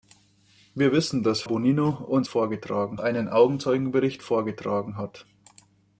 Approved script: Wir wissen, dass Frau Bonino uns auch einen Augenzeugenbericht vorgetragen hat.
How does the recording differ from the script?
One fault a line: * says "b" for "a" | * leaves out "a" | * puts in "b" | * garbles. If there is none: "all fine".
* leaves out "Frau"
* says "vorgetragen" for "auch"